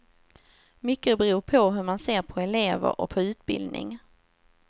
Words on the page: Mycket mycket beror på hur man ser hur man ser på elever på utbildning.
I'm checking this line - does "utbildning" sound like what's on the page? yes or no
yes